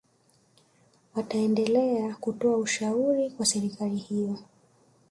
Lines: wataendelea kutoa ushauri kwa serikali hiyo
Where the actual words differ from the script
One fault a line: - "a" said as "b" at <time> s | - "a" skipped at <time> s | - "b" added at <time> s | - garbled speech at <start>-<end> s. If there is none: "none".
none